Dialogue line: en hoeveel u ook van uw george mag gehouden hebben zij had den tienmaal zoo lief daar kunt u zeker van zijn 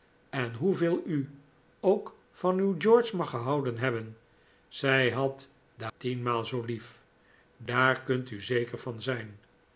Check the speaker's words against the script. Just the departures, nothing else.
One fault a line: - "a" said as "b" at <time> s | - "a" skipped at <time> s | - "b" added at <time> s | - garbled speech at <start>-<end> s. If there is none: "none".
none